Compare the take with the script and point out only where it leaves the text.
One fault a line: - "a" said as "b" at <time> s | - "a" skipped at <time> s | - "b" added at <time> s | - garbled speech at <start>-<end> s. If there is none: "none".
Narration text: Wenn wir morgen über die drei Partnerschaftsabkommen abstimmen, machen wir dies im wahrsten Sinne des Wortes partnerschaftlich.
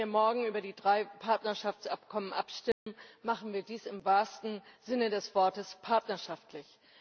none